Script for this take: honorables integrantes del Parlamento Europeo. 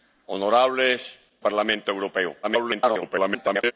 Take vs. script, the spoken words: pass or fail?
fail